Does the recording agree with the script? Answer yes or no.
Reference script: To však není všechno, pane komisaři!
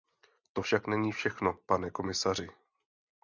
yes